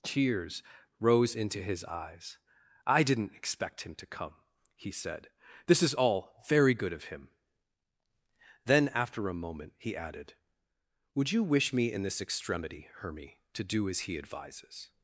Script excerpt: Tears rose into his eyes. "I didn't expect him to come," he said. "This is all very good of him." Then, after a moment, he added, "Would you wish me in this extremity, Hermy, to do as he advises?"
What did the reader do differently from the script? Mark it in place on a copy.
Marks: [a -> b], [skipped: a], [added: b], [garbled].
Tears rose into his eyes. "I didn't expect him to come," he said. "This is all very good of him." Then, after a moment, he added, "Would you wish me in this extremity, Hermy, to do as he advises?"